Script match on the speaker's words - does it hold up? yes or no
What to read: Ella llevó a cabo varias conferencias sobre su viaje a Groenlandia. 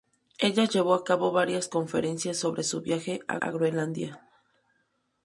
no